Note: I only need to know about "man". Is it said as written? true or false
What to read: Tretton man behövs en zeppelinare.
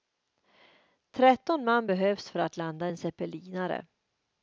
true